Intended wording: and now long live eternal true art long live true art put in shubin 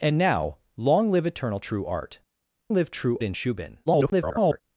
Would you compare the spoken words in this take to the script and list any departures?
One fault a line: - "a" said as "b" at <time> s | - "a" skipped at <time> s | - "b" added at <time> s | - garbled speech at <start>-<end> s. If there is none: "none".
- "long" skipped at 2.2 s
- "art put" skipped at 3.2 s
- garbled speech at 3.9-4.6 s